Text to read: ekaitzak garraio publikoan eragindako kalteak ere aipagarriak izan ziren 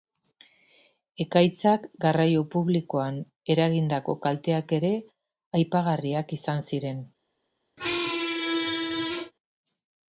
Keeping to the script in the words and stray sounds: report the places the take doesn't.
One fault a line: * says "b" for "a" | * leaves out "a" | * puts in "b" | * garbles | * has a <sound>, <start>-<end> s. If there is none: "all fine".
* has a squeak, 7.8-9.3 s